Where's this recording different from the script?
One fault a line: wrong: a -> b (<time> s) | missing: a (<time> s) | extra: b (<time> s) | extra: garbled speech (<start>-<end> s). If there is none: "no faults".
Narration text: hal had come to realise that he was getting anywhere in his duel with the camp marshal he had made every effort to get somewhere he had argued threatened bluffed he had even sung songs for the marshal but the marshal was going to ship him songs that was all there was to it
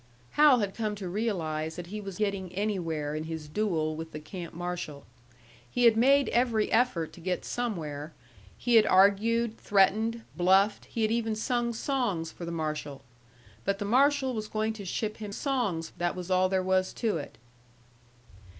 no faults